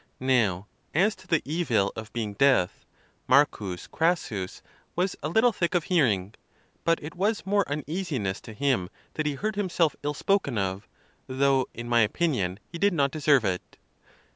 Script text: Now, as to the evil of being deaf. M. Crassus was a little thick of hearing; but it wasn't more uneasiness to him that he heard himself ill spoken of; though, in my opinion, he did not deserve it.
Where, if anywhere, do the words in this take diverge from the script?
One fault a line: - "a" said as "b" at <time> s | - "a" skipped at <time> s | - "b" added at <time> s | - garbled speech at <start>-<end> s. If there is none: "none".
- "wasn't" said as "was" at 7.1 s